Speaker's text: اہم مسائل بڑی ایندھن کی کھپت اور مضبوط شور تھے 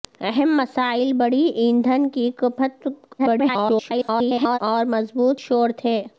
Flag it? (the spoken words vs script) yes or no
yes